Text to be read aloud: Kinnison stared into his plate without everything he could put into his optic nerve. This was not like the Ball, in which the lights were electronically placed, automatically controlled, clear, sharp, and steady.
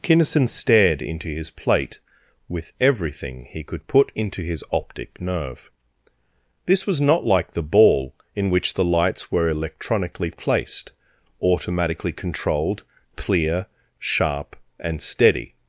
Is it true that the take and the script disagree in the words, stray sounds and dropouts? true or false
true